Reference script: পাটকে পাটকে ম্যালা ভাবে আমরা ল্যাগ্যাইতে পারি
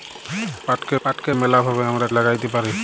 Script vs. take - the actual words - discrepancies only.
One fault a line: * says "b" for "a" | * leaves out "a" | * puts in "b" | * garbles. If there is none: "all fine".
all fine